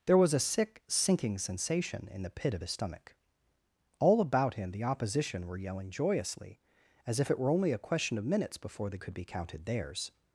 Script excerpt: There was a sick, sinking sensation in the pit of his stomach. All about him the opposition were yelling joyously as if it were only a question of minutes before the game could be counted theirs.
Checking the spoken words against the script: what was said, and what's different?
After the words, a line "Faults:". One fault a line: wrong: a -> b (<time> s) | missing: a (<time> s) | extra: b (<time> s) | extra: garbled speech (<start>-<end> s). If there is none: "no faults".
There was a sick, sinking sensation in the pit of his stomach. All about him the opposition were yelling joyously as if it were only a question of minutes before the could be counted theirs.
Faults:
missing: game (9.0 s)